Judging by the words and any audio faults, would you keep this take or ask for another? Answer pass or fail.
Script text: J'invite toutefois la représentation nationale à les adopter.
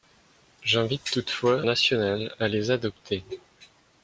fail